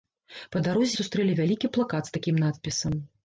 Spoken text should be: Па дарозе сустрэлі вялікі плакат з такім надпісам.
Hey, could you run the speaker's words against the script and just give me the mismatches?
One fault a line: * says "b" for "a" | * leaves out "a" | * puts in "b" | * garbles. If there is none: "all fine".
all fine